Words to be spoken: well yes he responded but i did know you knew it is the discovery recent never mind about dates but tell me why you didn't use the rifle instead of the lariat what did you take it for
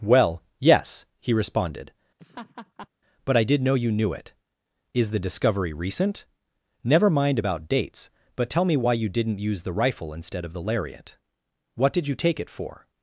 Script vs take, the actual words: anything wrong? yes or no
no